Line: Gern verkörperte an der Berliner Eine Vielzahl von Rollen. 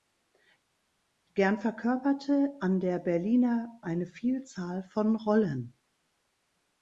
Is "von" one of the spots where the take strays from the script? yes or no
no